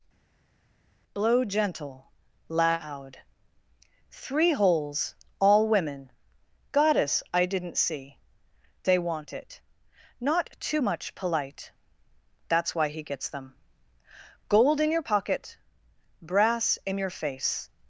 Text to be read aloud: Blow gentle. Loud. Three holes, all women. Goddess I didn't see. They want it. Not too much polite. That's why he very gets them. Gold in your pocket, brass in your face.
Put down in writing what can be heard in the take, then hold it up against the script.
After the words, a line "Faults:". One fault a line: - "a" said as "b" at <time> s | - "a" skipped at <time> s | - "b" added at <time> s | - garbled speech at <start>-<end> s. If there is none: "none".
Blow gentle. Loud. Three holes, all women. Goddess I didn't see. They want it. Not too much polite. That's why he gets them. Gold in your pocket, brass in your face.
Faults:
- "very" skipped at 13.0 s